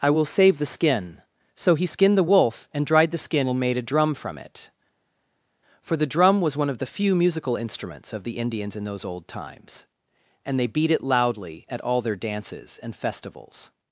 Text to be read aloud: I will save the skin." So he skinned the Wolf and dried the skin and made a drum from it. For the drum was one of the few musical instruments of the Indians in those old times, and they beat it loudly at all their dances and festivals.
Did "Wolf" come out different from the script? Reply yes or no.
no